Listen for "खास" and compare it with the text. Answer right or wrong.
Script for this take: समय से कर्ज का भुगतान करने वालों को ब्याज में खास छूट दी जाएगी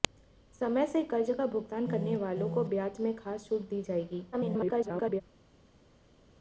right